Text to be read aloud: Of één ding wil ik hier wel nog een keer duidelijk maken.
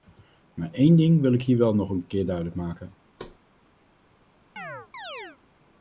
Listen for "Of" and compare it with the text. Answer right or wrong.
wrong